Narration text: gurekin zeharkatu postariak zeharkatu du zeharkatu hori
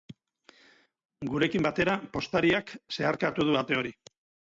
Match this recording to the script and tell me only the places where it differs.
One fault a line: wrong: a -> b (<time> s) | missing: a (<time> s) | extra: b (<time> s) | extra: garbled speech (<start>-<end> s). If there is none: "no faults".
wrong: zeharkatu -> batera (1.7 s)
wrong: zeharkatu -> ate (3.6 s)